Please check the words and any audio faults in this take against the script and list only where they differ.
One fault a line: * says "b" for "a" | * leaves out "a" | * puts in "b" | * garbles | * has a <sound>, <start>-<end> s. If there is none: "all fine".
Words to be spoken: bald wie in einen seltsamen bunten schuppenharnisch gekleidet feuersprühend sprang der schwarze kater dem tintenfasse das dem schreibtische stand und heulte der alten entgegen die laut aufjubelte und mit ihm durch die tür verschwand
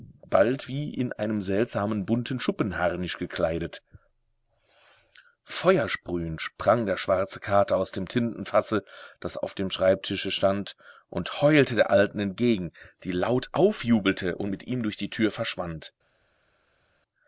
* puts in "aus"
* puts in "auf"